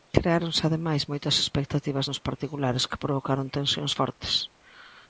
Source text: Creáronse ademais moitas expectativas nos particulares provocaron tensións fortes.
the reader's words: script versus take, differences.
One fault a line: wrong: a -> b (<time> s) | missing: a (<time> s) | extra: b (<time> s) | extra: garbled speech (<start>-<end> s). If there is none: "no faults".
extra: que (2.9 s)